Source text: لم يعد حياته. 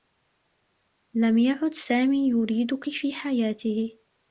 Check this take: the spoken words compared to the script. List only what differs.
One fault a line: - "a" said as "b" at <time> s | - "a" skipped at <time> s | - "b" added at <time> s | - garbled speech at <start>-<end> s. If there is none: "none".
- "سامي يريدك في" added at 1.7 s